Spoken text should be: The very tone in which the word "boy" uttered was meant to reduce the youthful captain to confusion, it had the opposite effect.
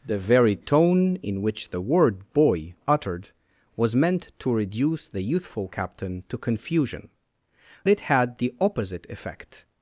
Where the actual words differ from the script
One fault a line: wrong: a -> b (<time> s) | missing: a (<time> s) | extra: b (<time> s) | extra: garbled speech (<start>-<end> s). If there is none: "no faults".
no faults